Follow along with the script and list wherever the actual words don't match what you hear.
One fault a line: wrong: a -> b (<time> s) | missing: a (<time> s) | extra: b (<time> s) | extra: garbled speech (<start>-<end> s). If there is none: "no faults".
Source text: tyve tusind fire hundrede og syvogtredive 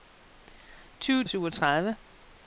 missing: tusind fire hundrede (1.2 s)